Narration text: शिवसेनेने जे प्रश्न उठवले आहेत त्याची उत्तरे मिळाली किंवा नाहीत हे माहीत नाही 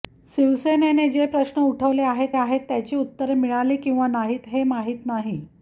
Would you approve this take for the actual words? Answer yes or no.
no